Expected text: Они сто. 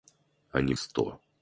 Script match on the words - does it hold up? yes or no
yes